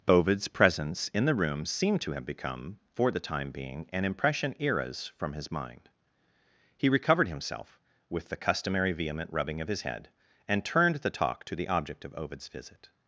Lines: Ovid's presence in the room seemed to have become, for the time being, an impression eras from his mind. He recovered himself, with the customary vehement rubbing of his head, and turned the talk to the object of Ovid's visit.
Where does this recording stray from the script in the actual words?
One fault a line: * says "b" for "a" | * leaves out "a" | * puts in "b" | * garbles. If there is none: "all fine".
all fine